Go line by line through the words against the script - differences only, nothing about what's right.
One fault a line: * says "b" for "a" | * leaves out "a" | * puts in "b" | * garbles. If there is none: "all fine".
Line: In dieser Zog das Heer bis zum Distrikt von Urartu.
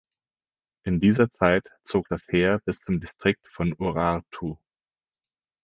* puts in "Zeit"